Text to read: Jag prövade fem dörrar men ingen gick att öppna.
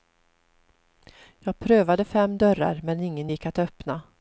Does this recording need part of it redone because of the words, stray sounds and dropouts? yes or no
no